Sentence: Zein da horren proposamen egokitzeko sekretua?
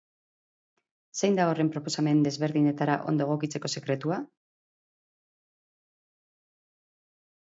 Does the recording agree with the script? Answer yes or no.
no